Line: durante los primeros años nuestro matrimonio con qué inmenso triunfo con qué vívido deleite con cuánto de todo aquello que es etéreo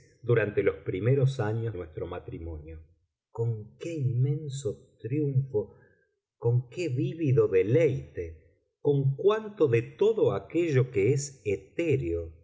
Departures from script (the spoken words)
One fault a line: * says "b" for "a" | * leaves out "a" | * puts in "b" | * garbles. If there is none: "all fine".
all fine